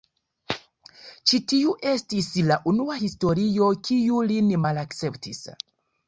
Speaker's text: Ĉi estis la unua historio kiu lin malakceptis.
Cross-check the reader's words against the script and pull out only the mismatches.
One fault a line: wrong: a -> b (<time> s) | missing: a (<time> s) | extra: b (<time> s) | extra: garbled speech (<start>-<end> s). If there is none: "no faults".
extra: tiu (1.5 s)